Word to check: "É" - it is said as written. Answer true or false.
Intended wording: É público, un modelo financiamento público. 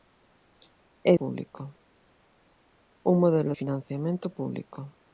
true